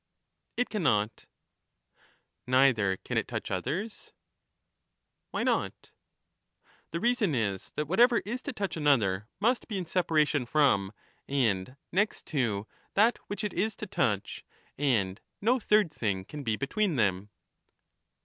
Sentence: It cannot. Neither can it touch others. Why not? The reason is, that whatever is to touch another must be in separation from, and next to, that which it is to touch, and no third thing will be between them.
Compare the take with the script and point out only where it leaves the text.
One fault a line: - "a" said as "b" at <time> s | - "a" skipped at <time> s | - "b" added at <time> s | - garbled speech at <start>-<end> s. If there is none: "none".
- "will" said as "can" at 16.2 s